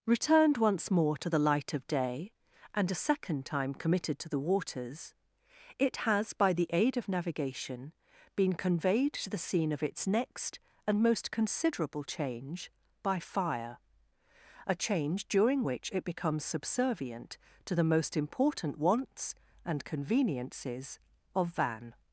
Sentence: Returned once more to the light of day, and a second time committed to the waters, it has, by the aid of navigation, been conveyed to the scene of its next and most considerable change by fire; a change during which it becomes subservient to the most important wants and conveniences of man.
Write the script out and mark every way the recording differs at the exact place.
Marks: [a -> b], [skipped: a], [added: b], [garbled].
Returned once more to the light of day, and a second time committed to the waters, it has, by the aid of navigation, been conveyed to the scene of its next and most considerable change by fire; a change during which it becomes subservient to the most important wants and conveniences of [man. -> van]